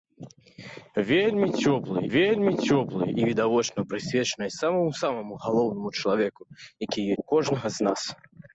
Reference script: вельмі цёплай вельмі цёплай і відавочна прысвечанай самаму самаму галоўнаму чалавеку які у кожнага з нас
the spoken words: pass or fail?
pass